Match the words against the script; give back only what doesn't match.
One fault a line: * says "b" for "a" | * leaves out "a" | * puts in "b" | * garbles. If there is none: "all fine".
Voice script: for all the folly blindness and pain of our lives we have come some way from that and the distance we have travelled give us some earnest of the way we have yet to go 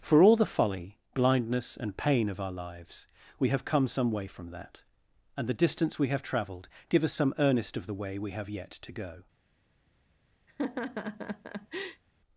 all fine